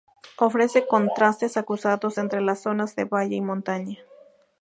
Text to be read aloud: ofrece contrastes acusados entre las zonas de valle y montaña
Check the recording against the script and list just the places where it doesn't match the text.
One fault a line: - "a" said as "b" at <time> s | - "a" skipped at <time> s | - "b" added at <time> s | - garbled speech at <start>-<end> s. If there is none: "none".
none